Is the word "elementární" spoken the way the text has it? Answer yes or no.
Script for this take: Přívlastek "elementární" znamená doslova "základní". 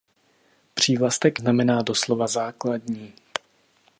no